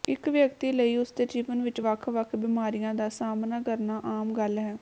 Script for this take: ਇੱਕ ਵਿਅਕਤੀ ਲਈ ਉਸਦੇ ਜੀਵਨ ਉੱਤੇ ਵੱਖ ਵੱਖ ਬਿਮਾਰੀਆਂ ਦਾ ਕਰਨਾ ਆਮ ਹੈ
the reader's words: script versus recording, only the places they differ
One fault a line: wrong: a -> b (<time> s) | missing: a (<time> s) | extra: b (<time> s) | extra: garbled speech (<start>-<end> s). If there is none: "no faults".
wrong: ਉੱਤੇ -> ਵਿੱਚ (1.6 s)
extra: ਸਾਹਮਣਾ (3.1 s)
extra: ਗੱਲ (4.3 s)